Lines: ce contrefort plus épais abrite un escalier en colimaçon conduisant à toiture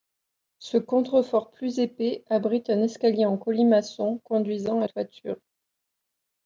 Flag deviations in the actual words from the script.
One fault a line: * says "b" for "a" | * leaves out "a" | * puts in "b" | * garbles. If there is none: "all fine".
all fine